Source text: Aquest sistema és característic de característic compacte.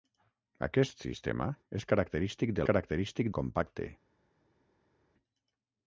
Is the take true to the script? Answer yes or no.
yes